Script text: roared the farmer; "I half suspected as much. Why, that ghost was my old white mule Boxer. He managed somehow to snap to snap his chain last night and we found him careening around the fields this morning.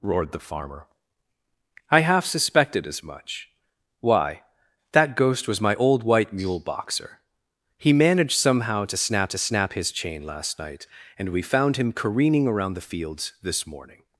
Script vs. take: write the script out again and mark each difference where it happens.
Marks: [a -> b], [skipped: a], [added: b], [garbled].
roared the farmer; "I half suspected as much. Why, that ghost was my old white mule Boxer. He managed somehow to snap to snap his chain last night and we found him careening around the fields this morning.